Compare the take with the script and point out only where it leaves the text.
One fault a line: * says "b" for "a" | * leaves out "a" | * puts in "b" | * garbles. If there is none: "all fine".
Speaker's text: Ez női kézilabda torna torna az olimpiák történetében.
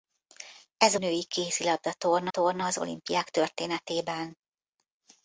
all fine